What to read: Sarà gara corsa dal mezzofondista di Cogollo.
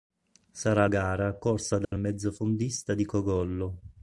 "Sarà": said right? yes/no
yes